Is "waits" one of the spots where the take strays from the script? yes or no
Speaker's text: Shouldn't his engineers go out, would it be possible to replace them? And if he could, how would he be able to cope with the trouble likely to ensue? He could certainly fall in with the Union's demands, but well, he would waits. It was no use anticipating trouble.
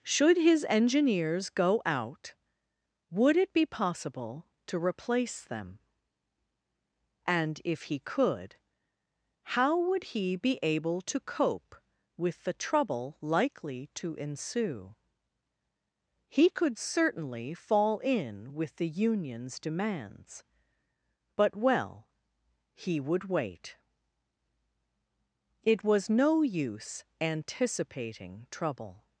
yes